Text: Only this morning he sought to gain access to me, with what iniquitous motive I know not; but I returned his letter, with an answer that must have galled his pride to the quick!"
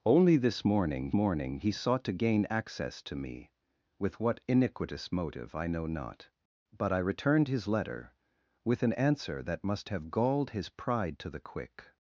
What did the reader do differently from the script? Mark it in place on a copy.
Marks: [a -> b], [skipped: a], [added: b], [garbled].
Only this morning [added: morning] he sought to gain access to me, with what iniquitous motive I know not; but I returned his letter, with an answer that must have galled his pride to the quick!"